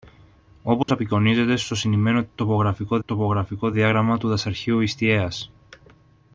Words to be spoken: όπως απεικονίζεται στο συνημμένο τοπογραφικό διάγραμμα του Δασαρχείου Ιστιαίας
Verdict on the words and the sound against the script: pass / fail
fail